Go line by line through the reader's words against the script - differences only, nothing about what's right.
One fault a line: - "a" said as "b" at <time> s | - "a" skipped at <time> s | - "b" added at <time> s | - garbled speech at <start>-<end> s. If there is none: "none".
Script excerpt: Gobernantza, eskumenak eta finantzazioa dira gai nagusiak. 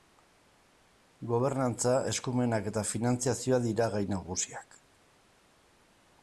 none